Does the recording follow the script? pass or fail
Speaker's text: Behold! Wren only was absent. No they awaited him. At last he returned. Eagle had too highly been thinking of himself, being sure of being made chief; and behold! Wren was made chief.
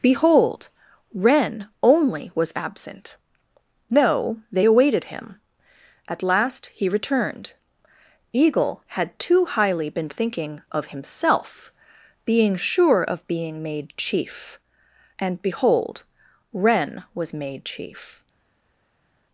pass